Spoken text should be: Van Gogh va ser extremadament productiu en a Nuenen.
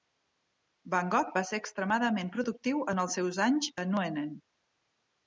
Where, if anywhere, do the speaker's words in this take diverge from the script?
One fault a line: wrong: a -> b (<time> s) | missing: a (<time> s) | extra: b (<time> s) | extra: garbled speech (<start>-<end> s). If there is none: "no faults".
extra: els seus anys (3.1 s)